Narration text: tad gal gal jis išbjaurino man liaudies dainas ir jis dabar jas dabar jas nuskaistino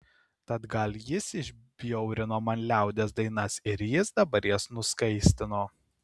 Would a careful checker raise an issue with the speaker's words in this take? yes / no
yes